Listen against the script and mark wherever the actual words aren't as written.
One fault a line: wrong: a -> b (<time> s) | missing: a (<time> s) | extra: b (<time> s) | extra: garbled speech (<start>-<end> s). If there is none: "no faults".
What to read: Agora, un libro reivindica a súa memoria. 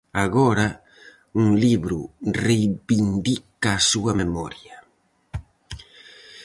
no faults